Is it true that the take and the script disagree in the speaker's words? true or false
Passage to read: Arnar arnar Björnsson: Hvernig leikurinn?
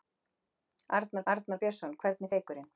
false